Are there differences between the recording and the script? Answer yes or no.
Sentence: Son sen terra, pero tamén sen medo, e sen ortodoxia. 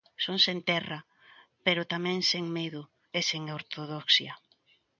no